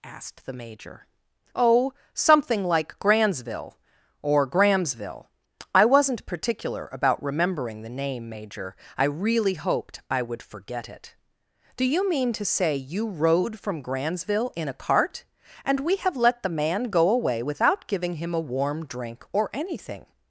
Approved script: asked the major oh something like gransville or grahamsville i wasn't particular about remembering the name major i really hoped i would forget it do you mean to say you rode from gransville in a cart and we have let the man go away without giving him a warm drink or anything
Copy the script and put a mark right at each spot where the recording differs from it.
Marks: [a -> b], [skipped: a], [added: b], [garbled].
asked the major oh something like gransville or grahamsville i wasn't particular about remembering the name major i really hoped i would forget it do you mean to say you rode from gransville in a cart and we have let the man go away without giving him a warm drink or anything